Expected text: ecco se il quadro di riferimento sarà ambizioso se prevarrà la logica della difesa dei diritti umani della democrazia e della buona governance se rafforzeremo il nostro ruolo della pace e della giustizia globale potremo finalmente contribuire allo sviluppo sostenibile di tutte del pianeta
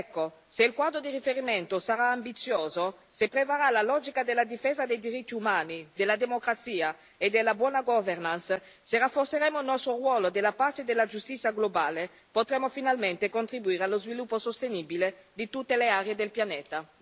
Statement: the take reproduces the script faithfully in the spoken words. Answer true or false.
false